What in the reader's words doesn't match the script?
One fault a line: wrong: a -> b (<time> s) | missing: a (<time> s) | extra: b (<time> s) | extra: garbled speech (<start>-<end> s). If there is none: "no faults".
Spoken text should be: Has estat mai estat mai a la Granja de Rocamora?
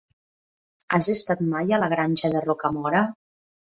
missing: estat mai (1.8 s)